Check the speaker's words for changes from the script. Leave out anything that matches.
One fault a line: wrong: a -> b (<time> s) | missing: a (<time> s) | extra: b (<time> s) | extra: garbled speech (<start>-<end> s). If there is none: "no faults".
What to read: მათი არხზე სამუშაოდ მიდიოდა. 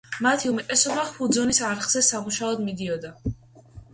extra: უმეტესობა ჰუძონის (0.5 s)